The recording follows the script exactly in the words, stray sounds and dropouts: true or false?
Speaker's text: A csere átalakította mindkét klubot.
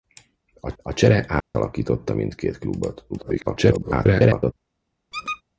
false